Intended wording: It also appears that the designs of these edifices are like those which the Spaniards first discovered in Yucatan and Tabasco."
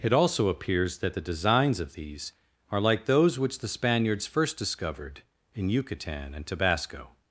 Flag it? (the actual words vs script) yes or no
yes